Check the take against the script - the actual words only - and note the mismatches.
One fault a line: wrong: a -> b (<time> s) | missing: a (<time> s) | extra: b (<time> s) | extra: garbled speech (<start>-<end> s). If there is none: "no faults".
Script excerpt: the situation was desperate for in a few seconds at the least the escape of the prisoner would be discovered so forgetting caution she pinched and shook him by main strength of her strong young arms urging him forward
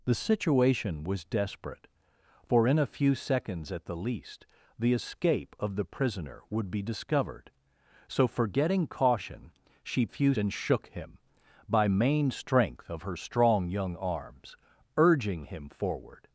wrong: pinched -> few (10.1 s)